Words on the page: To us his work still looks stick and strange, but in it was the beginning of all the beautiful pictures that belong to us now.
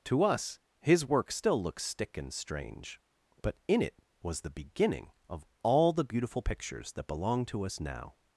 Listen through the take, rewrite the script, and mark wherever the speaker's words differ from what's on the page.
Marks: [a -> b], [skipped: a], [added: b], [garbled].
To us his work still looks stick and strange, but in it was the beginning of all the beautiful pictures that belong to us now.